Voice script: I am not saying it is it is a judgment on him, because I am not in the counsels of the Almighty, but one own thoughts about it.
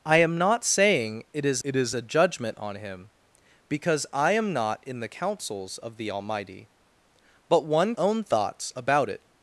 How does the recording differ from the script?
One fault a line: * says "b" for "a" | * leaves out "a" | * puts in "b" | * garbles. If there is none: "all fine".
all fine